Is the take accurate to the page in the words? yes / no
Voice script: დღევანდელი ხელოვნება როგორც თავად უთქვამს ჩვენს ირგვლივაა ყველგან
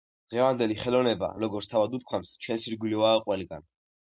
yes